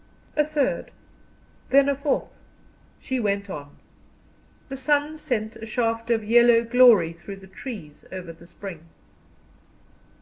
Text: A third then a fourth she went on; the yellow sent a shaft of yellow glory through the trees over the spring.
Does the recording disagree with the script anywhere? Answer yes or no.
yes